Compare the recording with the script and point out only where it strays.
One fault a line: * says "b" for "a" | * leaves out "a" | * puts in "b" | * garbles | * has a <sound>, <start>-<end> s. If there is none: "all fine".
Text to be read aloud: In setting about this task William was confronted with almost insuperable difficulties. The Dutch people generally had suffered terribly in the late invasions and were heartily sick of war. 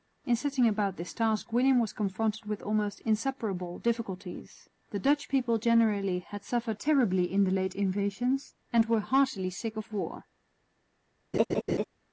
* has a laugh, 11.3-11.8 s